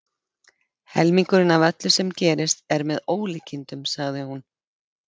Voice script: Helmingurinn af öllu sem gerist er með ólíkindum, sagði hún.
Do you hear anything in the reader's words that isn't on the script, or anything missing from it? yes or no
no